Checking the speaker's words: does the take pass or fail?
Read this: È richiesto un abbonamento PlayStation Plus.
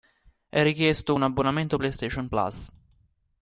pass